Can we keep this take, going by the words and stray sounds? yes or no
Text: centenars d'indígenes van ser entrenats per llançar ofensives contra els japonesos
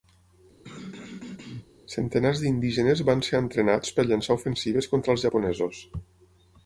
no